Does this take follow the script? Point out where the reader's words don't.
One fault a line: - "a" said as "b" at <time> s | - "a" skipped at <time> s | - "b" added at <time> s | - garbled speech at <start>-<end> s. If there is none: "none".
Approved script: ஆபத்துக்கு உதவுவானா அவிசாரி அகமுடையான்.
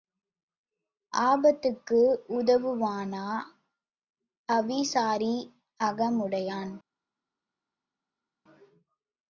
none